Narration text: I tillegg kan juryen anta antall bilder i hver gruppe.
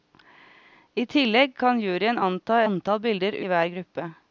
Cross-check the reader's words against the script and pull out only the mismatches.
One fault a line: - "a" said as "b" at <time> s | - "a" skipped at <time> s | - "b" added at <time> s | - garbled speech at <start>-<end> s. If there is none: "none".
none